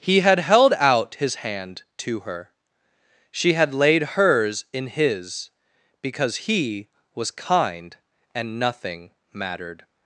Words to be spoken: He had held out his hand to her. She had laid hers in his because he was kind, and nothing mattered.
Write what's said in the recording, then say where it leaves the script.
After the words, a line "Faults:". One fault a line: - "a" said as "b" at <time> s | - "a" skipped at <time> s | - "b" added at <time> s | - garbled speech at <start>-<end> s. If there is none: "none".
He had held out his hand to her. She had laid hers in his because he was kind, and nothing mattered.
Faults:
none